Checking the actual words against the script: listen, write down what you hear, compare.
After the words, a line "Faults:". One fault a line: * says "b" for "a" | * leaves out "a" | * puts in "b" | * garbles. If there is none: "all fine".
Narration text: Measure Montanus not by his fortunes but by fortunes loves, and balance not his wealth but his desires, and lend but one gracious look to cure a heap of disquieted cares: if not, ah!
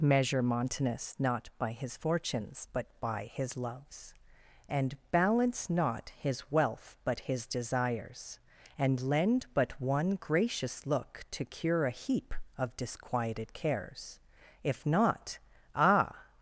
Measure Montanus not by his fortunes but by his loves, and balance not his wealth but his desires, and lend but one gracious look to cure a heap of disquieted cares: if not, ah!
Faults:
* says "his" for "fortunes"